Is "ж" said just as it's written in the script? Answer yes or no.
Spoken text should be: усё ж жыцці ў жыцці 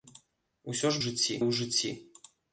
yes